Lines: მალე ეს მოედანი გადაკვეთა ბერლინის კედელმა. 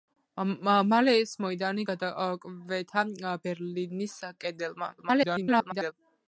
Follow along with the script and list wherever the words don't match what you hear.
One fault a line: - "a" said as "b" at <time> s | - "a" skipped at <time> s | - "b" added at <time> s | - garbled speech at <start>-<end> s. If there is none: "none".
- garbled speech at 5.0-5.9 s